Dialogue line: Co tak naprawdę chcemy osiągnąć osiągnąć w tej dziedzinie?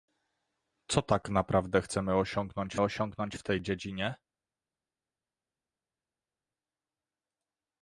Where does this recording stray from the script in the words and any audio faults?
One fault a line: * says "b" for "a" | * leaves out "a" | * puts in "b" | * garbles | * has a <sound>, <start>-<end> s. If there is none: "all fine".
all fine